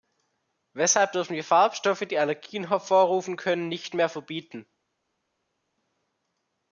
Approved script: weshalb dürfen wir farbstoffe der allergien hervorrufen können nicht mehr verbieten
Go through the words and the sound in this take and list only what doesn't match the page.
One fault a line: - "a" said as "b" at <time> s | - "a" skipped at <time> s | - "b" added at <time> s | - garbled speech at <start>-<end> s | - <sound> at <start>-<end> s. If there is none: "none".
- "der" said as "die" at 2.1 s